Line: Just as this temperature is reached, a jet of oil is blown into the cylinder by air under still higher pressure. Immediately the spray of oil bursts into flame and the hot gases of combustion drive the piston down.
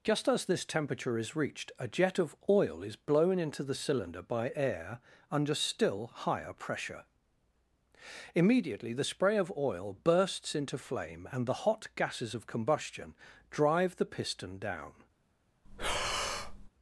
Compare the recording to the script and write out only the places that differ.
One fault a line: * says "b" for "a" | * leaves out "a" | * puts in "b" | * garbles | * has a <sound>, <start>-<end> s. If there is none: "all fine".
* has a breath, 15.6-16.7 s